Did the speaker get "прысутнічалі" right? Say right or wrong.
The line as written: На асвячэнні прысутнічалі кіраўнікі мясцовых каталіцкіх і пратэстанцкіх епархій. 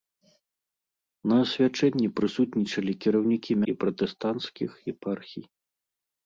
right